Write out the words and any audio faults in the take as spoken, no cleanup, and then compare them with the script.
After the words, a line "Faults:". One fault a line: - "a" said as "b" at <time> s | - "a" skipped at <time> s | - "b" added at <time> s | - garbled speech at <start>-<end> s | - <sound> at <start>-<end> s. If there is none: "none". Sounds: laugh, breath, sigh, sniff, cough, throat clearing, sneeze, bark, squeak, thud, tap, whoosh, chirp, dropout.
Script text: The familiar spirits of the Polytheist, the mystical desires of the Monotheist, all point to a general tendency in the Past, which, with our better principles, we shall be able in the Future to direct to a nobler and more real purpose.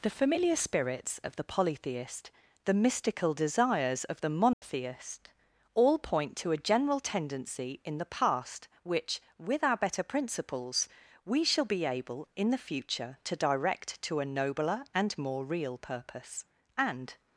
The familiar spirits of the Polytheist, the mystical desires of the Monotheist, all point to a general tendency in the Past, which, with our better principles, we shall be able in the Future to direct to a nobler and more real purpose. And
Faults:
- dropout at 4.5-4.6 s
- "And" added at 16.8 s